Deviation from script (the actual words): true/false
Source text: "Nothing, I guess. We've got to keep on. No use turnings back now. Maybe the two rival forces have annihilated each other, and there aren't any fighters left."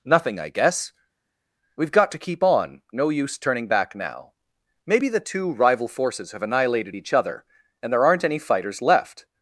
true